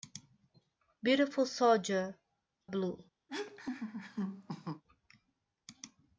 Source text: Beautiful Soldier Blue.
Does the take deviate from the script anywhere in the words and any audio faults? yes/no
yes